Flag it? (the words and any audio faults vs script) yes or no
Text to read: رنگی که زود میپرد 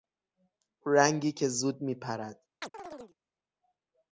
yes